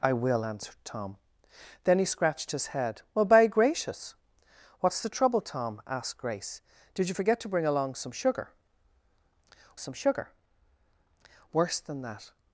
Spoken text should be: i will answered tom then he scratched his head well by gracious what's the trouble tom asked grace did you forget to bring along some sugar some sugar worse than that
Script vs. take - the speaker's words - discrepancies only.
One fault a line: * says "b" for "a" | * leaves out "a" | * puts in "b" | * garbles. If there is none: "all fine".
all fine